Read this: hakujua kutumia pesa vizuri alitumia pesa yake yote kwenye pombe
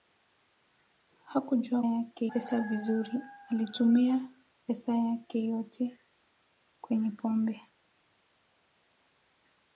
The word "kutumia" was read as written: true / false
false